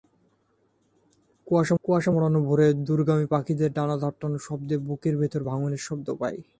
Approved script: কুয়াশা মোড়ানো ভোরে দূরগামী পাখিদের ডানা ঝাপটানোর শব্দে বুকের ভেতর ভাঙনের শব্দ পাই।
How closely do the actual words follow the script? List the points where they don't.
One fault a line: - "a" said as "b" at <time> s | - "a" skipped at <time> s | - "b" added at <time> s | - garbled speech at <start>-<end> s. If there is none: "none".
- "কুয়াশা" added at 1.8 s